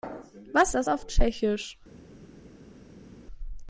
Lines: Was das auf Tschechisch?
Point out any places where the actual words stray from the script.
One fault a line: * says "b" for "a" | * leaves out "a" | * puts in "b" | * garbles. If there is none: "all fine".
all fine